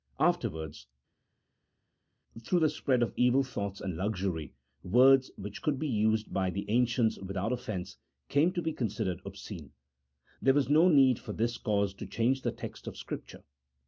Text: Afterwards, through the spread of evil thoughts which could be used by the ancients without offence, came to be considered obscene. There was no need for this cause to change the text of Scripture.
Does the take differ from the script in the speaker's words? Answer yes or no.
yes